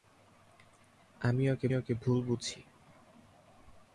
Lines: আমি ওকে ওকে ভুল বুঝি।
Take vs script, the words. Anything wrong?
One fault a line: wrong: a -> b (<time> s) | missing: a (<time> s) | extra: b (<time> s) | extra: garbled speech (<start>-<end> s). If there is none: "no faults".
no faults